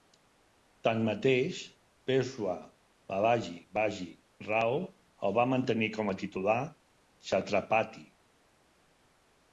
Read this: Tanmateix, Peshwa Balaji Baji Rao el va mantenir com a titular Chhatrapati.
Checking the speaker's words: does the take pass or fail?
pass